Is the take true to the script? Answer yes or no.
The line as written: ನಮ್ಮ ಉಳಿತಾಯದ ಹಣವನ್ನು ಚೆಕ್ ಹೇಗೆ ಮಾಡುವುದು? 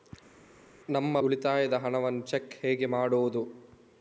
yes